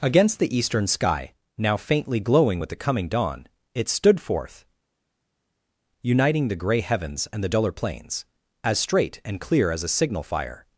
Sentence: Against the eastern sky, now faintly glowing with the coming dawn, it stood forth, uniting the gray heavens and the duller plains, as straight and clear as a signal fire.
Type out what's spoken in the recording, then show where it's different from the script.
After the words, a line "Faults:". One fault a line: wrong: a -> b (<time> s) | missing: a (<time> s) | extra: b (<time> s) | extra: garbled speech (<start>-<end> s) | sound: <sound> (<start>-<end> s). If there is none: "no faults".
Against the eastern sky, now faintly glowing with the coming dawn, it stood forth, uniting the gray heavens and the duller plains, as straight and clear as a signal fire.
Faults:
no faults